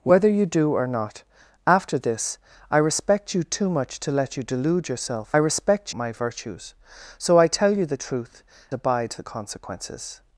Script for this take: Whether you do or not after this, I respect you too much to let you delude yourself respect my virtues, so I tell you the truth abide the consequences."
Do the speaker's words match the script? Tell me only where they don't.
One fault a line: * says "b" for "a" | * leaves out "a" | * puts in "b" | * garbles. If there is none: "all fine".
all fine